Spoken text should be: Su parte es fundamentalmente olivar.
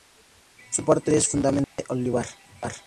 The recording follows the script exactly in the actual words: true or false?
true